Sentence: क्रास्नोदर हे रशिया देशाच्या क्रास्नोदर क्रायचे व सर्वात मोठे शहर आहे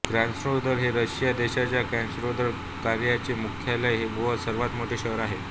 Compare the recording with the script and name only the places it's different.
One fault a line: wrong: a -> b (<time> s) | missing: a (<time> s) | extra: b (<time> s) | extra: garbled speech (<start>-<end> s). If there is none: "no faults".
extra: मुख्यालय (3.4 s)